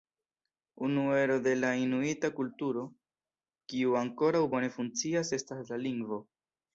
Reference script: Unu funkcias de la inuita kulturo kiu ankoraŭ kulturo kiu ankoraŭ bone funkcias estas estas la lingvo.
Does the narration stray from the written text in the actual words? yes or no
yes